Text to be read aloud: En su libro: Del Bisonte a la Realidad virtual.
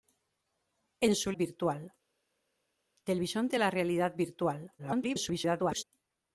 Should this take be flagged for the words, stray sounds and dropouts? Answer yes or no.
yes